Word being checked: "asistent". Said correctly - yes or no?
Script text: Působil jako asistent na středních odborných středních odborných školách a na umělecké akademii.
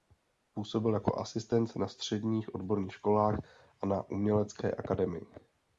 yes